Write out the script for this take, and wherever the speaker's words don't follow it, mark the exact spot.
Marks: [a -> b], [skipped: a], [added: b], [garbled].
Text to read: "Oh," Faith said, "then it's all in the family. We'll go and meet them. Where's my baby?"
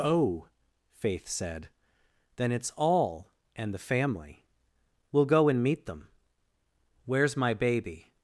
"Oh," Faith said, "then it's all [in -> and] the family. We'll go and meet them. Where's my baby?"